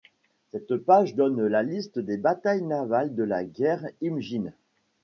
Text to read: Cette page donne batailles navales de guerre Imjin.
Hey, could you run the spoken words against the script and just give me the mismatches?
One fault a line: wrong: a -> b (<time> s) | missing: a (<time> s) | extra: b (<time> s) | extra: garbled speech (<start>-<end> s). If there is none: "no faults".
extra: la liste des (1.5 s)
extra: la (3.2 s)